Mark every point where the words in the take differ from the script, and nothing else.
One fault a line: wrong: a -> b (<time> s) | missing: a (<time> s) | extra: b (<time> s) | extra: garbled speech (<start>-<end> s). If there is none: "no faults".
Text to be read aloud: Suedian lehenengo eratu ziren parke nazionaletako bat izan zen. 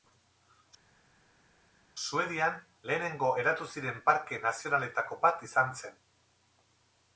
no faults